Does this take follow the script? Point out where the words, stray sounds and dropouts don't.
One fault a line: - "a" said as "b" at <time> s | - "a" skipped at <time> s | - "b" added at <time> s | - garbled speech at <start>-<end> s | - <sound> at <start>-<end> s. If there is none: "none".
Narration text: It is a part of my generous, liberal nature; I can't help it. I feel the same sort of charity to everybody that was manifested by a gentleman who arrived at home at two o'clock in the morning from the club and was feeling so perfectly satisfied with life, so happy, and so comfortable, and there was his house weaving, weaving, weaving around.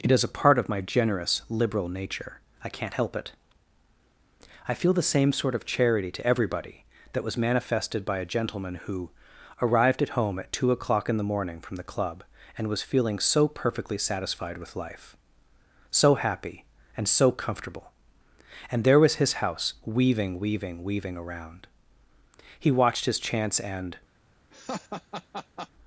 - "He watched his chance and" added at 22.6 s
- laugh at 24.5-25.7 s